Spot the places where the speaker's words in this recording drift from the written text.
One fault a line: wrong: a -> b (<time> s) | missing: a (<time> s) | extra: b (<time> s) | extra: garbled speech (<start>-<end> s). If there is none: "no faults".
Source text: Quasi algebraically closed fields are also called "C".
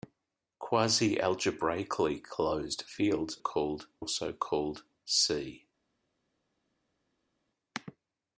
wrong: are -> called (3.4 s)